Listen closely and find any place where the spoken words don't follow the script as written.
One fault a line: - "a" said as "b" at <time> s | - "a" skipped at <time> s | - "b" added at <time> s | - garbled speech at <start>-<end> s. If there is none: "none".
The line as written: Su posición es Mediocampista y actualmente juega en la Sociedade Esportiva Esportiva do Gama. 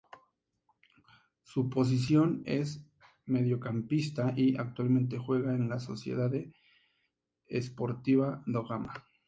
- "Esportiva" skipped at 8.4 s